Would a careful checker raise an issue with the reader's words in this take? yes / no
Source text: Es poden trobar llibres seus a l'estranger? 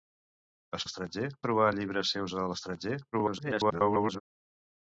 yes